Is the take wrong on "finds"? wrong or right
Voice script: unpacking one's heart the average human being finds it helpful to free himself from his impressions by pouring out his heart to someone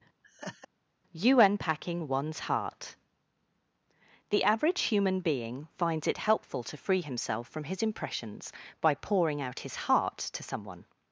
right